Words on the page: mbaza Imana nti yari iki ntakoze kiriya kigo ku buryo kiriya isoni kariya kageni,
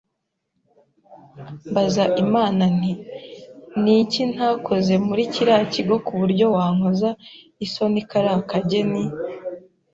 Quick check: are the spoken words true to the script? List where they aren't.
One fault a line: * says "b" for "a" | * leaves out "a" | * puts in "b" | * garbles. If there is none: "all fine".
* says "ni" for "yari"
* puts in "muri"
* says "wankoza" for "kiriya"